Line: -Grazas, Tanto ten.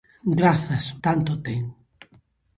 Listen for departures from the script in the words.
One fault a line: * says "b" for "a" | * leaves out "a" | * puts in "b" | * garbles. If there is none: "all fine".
all fine